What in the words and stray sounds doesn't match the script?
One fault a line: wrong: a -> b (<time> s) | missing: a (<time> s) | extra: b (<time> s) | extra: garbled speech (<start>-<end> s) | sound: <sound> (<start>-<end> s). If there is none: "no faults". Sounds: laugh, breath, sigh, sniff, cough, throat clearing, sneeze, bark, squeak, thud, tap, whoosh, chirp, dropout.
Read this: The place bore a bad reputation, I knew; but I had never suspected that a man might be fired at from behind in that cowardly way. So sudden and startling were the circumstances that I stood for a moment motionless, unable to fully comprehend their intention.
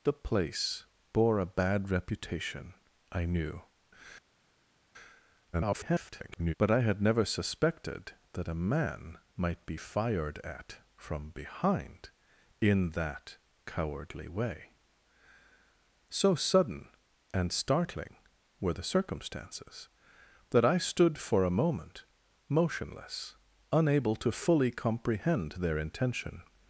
extra: garbled speech (5.5-6.5 s)